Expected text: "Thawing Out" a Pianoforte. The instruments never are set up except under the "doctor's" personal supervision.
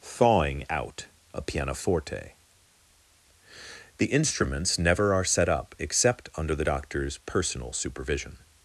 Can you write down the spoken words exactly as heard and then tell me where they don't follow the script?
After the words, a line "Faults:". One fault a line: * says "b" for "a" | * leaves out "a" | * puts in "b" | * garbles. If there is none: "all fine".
"Thawing Out" a Pianoforte. The instruments never are set up except under the "doctor's" personal supervision.
Faults:
all fine